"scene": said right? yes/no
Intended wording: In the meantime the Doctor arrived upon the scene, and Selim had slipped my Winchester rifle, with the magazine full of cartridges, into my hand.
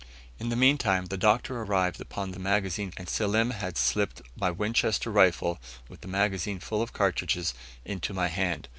no